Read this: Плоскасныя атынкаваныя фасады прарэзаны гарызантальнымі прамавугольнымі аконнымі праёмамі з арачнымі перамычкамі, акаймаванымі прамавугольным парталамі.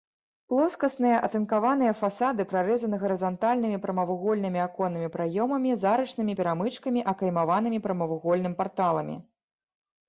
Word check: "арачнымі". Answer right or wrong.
right